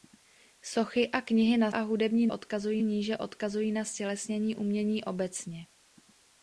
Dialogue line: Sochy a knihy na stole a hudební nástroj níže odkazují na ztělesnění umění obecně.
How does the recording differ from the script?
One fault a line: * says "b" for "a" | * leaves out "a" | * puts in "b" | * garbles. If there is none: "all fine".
* leaves out "stole"
* says "odkazují" for "nástroj"